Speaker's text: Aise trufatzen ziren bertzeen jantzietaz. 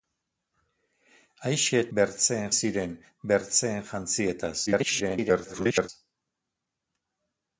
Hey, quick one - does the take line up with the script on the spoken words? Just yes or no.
no